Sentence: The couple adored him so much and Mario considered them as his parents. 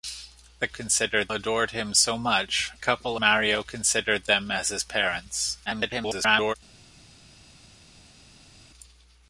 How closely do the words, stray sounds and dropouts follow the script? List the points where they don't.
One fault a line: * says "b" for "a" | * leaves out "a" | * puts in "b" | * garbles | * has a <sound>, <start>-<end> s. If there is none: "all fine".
* says "considered" for "couple"
* says "couple" for "and"
* garbles